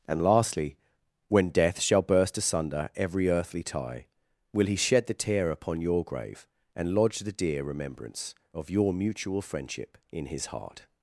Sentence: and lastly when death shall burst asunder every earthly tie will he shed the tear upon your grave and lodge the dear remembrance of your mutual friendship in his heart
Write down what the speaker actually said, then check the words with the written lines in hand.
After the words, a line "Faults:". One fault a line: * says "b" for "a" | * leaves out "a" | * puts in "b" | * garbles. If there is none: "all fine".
and lastly when death shall burst asunder every earthly tie will he shed the tear upon your grave and lodge the dear remembrance of your mutual friendship in his heart
Faults:
all fine